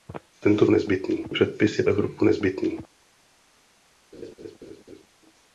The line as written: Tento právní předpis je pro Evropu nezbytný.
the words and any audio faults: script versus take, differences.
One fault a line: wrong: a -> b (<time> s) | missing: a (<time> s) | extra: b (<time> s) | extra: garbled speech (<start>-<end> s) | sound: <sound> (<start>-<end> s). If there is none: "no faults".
wrong: právní -> nezbytný (0.7 s)
missing: pro (1.8 s)
sound: laugh (4.1-5.1 s)